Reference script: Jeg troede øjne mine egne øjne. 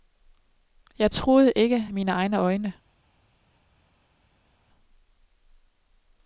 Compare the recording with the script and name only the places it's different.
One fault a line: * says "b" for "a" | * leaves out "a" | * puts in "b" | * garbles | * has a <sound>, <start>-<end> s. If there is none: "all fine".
* says "ikke" for "øjne"